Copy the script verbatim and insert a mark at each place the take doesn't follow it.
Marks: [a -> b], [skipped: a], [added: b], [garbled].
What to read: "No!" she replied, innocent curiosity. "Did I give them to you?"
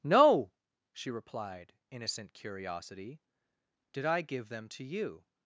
"No!" she replied, innocent curiosity. "Did I give them to you?"